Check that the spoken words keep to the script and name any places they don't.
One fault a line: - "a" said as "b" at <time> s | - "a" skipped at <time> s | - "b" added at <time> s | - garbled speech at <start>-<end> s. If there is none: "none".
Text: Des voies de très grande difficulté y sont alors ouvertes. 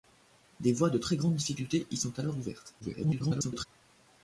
- garbled speech at 2.8-3.7 s